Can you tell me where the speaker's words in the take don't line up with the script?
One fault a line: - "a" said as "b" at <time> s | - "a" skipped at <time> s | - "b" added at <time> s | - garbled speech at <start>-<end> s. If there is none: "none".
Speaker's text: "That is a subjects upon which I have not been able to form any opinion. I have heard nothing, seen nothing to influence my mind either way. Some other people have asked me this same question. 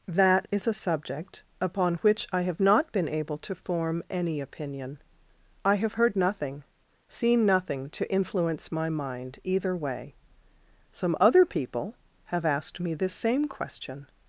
- "subjects" said as "subject" at 0.7 s